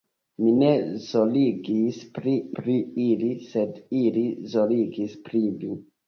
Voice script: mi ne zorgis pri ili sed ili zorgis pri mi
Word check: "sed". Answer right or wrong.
right